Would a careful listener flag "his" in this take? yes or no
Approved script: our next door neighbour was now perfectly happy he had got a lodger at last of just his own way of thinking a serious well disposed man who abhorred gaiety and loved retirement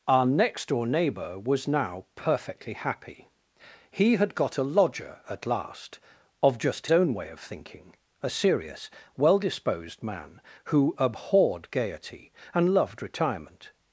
yes